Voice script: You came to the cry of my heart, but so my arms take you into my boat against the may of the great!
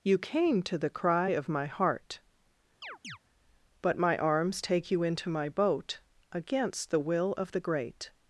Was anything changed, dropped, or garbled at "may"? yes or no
yes